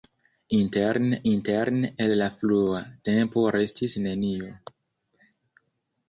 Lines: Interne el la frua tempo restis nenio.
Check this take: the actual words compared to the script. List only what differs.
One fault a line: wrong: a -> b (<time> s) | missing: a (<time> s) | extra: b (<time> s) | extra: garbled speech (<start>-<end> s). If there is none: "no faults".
extra: interne (1.3 s)